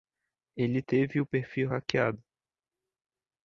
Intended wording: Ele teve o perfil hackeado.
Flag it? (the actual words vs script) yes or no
no